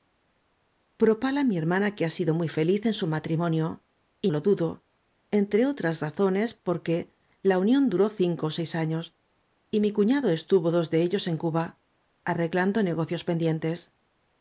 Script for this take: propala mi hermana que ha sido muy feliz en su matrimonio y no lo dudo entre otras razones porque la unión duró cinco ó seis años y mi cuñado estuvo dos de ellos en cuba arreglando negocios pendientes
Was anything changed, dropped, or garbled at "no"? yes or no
yes